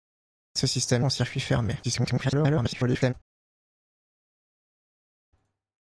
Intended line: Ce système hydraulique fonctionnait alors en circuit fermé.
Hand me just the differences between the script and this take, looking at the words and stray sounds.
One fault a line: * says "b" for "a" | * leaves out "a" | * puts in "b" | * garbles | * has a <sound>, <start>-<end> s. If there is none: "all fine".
* leaves out "hydraulique fonctionnait alors"
* garbles